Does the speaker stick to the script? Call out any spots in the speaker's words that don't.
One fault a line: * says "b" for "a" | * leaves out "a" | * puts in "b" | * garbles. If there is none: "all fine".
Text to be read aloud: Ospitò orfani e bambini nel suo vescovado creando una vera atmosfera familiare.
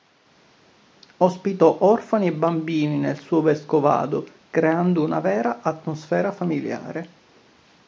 all fine